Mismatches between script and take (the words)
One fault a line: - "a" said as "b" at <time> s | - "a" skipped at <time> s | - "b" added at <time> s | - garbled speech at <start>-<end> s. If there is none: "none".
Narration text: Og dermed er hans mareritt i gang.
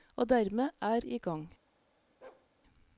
- "hans mareritt" skipped at 1.1 s